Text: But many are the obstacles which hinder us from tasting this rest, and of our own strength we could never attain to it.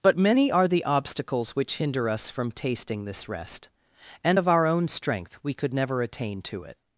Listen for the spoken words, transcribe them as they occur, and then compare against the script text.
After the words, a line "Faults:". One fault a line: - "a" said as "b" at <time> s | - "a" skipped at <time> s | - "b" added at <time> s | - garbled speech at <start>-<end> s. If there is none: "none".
But many are the obstacles which hinder us from tasting this rest, and of our own strength we could never attain to it.
Faults:
none